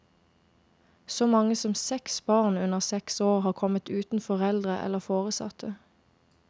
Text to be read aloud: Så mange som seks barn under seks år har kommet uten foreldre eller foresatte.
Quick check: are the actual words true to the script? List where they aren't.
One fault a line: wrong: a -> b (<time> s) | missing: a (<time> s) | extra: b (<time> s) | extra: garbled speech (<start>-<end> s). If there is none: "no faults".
no faults